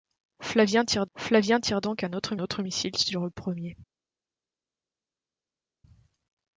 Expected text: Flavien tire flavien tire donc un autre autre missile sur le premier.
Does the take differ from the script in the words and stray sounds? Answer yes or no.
no